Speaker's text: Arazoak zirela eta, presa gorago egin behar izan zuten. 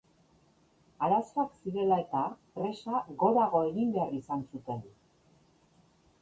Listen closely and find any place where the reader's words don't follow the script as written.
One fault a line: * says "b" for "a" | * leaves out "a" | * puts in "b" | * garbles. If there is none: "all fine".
all fine